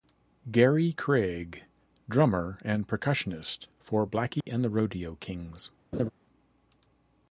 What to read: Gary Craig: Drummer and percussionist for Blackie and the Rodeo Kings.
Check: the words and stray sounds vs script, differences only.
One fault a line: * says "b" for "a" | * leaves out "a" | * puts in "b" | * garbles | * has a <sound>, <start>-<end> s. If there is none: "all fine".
* has a dropout, 4.4-4.5 s
* has a laugh, 5.9-6.1 s